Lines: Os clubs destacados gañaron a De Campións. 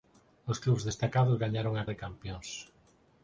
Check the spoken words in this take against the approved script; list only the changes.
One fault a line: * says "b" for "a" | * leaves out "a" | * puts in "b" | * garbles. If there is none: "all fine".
all fine